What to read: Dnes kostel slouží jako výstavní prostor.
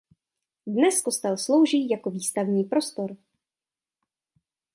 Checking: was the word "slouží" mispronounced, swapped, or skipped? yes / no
no